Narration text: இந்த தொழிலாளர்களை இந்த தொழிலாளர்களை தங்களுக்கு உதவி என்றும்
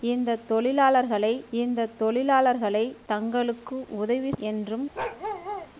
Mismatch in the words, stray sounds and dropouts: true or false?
true